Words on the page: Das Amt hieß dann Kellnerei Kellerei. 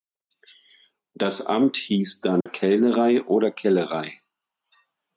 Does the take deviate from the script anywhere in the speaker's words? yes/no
yes